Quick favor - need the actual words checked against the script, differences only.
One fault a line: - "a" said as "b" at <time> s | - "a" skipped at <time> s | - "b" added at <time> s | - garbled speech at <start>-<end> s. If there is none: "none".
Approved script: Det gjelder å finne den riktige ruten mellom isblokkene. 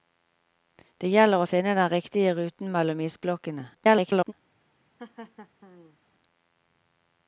- garbled speech at 3.7-4.3 s